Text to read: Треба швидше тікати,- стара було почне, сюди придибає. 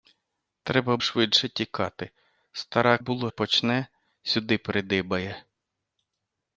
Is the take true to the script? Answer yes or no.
yes